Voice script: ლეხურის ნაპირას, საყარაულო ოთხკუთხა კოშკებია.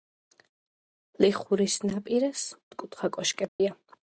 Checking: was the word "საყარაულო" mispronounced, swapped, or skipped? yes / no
yes